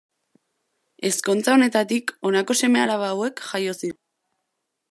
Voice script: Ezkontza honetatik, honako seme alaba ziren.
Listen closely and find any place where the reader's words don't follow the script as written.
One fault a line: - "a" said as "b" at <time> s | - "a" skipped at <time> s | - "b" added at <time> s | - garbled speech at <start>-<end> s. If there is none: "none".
- "hauek jaio" added at 3.1 s